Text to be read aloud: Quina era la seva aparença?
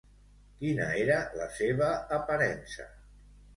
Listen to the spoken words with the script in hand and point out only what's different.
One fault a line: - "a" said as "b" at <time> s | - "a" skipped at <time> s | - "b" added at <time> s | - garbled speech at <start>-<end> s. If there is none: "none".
none